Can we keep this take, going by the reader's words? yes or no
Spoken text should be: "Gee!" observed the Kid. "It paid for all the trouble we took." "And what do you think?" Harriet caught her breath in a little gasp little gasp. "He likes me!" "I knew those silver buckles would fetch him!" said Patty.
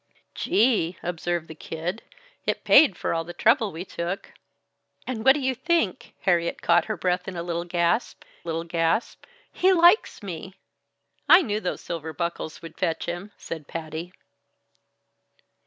yes